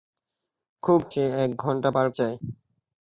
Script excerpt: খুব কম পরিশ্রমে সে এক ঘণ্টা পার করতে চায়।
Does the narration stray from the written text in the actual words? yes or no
yes